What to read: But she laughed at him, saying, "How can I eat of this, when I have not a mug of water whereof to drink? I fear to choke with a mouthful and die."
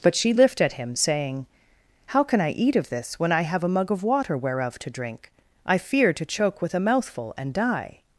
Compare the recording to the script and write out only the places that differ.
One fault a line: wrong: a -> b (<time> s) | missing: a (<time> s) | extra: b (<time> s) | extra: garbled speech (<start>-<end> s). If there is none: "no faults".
wrong: laughed -> lift (0.3 s)
missing: not (3.6 s)